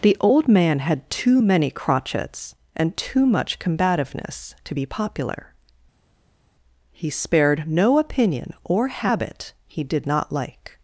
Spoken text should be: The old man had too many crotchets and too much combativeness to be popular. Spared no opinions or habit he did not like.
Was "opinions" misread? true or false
true